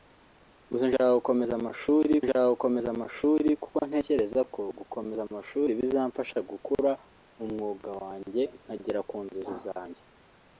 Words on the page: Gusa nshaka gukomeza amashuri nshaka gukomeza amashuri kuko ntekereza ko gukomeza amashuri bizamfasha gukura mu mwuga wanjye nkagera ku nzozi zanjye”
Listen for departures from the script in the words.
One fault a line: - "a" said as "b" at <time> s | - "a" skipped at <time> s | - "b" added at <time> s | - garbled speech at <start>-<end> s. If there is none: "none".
none